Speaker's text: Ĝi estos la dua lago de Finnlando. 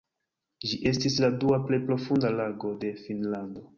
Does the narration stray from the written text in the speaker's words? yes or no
yes